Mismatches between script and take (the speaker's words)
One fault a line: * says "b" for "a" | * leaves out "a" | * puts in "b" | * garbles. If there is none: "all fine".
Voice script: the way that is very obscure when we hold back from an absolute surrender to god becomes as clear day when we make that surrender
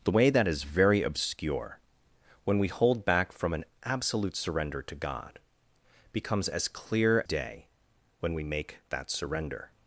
all fine